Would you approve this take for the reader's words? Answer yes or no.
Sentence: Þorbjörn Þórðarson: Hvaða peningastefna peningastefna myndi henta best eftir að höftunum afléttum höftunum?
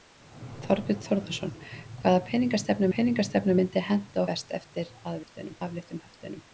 yes